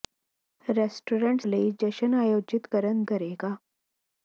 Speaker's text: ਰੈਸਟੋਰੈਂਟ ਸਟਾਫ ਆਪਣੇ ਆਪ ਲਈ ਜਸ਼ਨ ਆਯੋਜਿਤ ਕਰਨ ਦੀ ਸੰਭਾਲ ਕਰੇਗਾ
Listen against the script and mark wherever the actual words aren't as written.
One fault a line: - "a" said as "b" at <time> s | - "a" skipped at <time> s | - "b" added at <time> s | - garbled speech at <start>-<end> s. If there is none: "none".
- "ਸਟਾਫ ਆਪਣੇ ਆਪ" skipped at 1.4 s
- "ਦੀ ਸੰਭਾਲ" skipped at 3.0 s